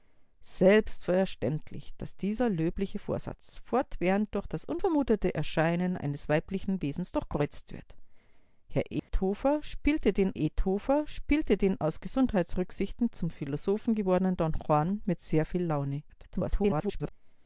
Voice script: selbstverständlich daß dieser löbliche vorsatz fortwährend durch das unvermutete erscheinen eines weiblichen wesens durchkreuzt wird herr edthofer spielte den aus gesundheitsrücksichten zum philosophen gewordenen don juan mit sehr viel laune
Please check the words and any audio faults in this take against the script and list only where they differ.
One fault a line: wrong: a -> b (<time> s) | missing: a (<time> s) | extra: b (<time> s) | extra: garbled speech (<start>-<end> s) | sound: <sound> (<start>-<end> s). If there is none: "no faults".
sound: dropout (9.0-9.1 s)
extra: edthofer spielte den (10.3 s)
extra: garbled speech (16.1-17.1 s)